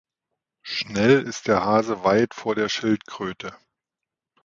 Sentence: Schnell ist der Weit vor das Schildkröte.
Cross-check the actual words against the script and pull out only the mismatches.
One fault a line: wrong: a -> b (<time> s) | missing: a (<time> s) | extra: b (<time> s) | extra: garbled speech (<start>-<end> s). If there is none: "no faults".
extra: Hase (1.6 s)
wrong: das -> der (2.6 s)